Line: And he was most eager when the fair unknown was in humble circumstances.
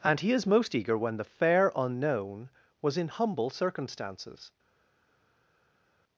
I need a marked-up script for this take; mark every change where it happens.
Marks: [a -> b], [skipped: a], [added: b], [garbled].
And he [was -> is] most eager when the fair unknown was in humble circumstances.